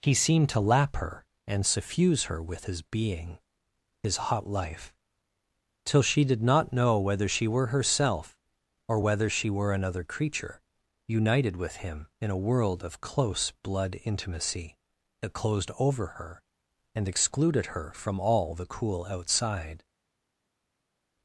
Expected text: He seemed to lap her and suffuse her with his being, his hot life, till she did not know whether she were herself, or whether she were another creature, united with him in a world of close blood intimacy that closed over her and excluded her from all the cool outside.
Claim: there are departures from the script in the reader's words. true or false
false